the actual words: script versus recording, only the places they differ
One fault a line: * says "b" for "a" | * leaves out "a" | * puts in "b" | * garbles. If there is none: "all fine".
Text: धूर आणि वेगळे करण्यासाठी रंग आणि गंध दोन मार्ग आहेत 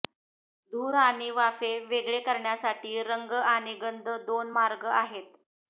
* puts in "वाफे"